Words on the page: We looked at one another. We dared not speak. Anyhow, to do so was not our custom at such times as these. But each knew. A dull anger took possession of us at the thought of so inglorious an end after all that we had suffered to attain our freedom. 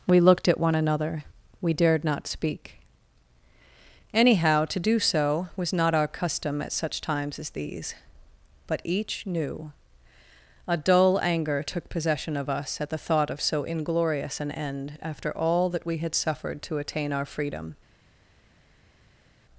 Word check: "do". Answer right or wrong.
right